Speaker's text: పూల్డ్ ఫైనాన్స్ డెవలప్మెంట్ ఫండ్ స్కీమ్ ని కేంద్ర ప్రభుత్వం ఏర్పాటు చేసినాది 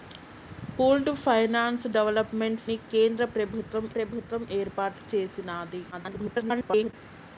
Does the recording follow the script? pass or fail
fail